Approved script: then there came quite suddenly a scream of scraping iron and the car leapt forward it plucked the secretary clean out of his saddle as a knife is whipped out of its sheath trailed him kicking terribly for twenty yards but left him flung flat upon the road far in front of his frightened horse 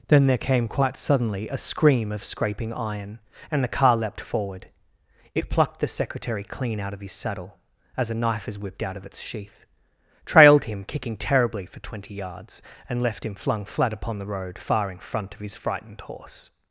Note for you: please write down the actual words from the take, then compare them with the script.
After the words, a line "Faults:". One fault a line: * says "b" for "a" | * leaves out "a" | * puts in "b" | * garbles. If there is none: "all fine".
then there came quite suddenly a scream of scraping iron and the car leapt forward it plucked the secretary clean out of his saddle as a knife is whipped out of its sheath trailed him kicking terribly for twenty yards and left him flung flat upon the road far in front of his frightened horse
Faults:
* says "and" for "but"